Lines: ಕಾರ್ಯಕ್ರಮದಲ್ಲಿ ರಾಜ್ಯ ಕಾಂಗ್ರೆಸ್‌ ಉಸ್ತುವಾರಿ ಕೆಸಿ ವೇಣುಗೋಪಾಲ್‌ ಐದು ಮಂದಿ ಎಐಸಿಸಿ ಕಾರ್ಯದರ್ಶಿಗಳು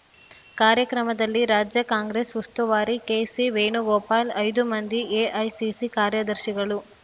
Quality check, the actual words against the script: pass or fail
pass